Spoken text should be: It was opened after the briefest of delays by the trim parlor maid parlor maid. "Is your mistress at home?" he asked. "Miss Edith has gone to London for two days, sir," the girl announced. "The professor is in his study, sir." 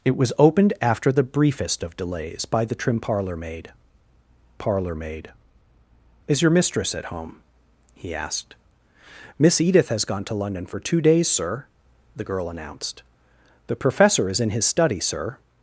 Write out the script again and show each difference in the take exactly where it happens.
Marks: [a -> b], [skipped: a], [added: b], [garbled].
It was opened after the briefest of delays by the trim parlor maid parlor maid. "Is your mistress at home?" he asked. "Miss Edith has gone to London for two days, sir," the girl announced. "The professor is in his study, sir."